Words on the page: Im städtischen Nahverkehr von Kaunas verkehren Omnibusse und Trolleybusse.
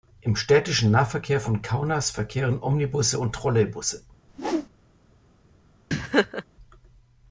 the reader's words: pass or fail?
pass